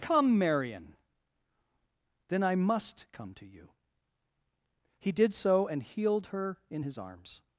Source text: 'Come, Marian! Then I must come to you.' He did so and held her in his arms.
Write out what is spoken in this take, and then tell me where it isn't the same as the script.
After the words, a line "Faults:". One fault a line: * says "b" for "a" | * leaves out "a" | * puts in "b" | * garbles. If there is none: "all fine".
'Come, Marian! Then I must come to you.' He did so and healed her in his arms.
Faults:
* says "healed" for "held"